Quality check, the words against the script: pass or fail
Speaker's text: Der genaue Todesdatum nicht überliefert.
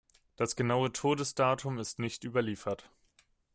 fail